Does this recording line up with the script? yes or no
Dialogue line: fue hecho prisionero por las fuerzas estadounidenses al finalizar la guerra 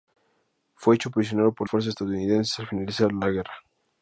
no